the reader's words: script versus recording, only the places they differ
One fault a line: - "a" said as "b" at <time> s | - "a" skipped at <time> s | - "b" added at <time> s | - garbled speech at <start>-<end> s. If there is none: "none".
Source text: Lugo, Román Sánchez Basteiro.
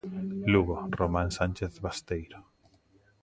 none